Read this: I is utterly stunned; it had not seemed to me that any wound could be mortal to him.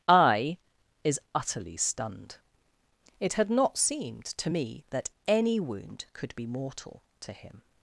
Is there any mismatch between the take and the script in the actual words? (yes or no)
no